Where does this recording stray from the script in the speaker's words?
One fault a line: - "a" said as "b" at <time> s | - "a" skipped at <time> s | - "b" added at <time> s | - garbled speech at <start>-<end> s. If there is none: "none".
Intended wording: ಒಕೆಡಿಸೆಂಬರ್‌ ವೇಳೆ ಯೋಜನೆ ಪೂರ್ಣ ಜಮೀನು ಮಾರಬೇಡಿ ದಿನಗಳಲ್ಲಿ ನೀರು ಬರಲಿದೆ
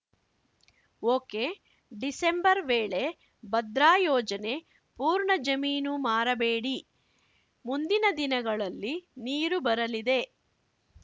- "ಭದ್ರಾ" added at 3.4 s
- "ಮುಂದಿನ" added at 7.6 s